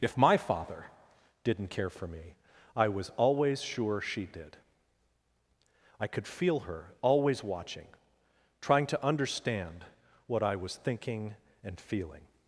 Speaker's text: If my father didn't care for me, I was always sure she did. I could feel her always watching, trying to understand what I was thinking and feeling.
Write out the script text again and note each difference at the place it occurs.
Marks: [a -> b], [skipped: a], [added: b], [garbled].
If my father didn't care for me, I was always sure she did. I could feel her always watching, trying to understand what I was thinking and feeling.